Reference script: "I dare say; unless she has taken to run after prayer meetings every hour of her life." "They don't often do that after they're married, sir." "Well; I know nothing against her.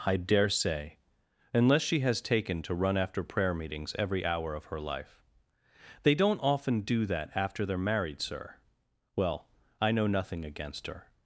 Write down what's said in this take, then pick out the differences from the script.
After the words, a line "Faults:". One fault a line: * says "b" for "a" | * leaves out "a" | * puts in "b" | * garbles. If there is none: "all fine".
"I dare say; unless she has taken to run after prayer meetings every hour of her life." "They don't often do that after they're married, sir." "Well; I know nothing against her.
Faults:
all fine